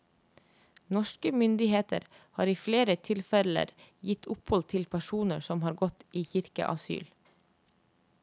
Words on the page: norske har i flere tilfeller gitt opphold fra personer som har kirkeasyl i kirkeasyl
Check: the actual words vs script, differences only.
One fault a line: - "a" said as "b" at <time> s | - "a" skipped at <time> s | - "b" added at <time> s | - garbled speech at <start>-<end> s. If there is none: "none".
- "myndigheter" added at 1.4 s
- "fra" said as "til" at 4.7 s
- "kirkeasyl" said as "gått" at 5.8 s